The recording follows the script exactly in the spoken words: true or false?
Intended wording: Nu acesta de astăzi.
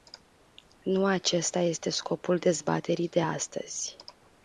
false